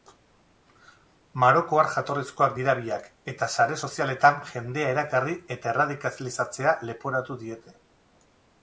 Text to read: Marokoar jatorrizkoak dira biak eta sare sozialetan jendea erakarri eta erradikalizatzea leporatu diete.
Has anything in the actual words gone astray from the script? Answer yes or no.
no